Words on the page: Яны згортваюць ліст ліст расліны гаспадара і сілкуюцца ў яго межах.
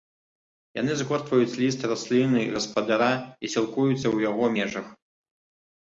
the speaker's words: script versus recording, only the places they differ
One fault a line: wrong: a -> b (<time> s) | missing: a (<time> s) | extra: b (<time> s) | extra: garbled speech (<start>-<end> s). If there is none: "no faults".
missing: ліст (1.9 s)